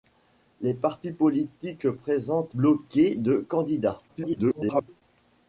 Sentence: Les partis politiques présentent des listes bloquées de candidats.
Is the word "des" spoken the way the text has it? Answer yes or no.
no